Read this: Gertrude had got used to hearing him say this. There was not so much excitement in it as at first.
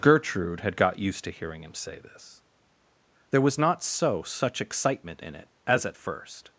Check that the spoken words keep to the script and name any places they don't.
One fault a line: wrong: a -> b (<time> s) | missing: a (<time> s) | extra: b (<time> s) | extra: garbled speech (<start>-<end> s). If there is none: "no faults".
wrong: much -> such (4.2 s)